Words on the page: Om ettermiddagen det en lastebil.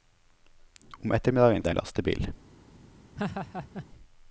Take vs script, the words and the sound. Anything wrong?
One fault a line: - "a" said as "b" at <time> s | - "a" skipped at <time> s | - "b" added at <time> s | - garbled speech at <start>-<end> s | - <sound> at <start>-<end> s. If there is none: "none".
- laugh at 3.2-3.9 s